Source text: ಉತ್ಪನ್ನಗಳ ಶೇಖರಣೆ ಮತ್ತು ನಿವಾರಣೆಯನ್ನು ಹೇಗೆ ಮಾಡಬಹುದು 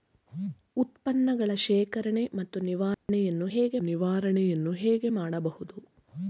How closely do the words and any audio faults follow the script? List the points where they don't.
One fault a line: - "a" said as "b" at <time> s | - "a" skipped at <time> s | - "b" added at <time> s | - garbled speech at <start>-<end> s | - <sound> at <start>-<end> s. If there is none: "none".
- dropout at 2.9-3.1 s
- "ನಿವಾರಣೆಯನ್ನು ಹೇಗೆ" added at 3.8 s